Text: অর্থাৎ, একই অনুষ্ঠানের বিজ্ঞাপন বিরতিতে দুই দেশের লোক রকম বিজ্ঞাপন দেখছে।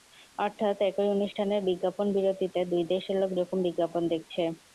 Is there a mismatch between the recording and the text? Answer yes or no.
no